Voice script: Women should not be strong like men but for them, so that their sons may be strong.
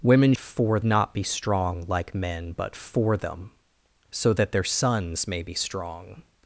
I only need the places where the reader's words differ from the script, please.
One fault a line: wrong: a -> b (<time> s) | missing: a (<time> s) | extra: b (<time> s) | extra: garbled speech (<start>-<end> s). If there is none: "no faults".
wrong: should -> for (0.4 s)